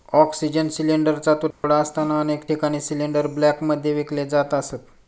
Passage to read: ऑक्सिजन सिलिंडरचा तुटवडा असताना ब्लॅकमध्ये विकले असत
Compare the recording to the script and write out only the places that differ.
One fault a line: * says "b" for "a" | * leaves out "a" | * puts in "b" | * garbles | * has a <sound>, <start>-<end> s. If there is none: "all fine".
* has a dropout, 1.5-1.6 s
* puts in "अनेक ठिकाणी सिलिंडर"
* puts in "जात"